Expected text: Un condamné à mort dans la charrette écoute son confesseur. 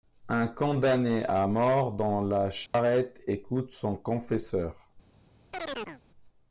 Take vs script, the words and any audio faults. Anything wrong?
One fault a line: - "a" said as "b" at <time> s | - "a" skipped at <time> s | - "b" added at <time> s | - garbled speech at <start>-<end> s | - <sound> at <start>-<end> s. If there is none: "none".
- dropout at 2.7-2.7 s
- chirp at 5.5-6.0 s